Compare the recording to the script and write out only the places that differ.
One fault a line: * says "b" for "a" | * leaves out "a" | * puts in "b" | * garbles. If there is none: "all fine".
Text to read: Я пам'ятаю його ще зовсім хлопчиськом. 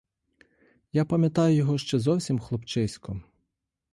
all fine